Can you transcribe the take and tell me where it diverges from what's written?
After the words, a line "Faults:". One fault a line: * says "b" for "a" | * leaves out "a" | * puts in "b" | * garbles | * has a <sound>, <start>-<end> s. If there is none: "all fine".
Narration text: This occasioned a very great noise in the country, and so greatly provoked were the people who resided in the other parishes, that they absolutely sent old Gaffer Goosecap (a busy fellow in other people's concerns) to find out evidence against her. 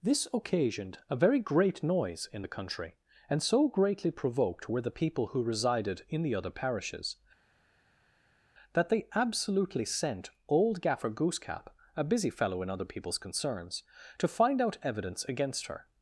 This occasioned a very great noise in the country, and so greatly provoked were the people who resided in the other parishes, that they absolutely sent old Gaffer Goosecap (a busy fellow in other people's concerns) to find out evidence against her.
Faults:
all fine